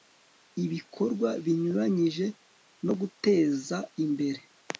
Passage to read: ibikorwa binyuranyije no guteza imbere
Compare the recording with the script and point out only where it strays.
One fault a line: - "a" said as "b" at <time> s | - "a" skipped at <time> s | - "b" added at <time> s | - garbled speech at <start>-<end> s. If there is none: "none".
none